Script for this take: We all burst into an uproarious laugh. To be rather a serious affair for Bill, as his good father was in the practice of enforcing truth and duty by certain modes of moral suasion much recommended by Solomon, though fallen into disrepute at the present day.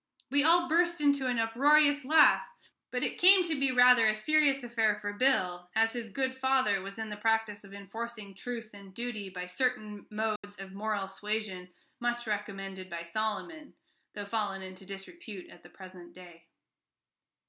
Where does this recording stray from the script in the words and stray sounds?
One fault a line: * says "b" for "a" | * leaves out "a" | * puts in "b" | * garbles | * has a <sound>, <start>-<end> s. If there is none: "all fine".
* puts in "But it came"
* has a dropout, 10.4-10.4 s